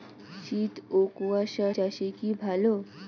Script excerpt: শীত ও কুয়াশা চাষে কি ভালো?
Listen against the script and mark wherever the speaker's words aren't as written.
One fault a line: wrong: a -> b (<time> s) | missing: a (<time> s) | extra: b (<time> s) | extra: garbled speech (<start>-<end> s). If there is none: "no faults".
no faults